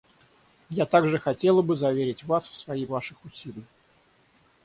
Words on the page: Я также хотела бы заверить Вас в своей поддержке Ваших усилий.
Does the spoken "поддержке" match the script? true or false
false